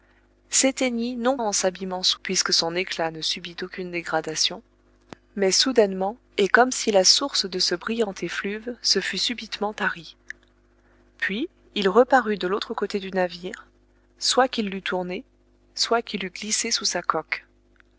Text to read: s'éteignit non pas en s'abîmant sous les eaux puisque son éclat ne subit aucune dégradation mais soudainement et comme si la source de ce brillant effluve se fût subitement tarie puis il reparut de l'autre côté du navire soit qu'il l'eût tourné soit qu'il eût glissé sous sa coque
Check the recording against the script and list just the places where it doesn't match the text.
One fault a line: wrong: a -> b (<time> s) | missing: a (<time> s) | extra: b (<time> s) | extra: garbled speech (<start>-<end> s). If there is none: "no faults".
missing: pas (1.4 s)
missing: les eaux (2.2 s)